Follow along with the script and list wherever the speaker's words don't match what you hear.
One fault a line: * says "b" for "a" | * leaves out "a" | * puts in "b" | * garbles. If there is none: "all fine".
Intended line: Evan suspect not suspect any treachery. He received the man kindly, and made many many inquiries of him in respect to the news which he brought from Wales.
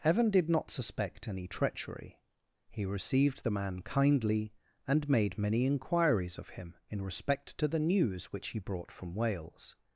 * says "did" for "suspect"
* leaves out "many"